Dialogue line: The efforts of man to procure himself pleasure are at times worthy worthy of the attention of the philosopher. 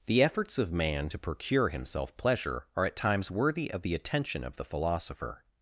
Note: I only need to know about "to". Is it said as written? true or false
true